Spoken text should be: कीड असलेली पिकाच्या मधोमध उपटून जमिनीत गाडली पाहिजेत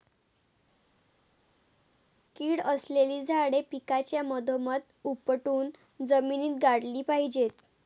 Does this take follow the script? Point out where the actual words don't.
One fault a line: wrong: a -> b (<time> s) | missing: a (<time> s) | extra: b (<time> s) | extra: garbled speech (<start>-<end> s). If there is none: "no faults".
extra: झाडे (3.2 s)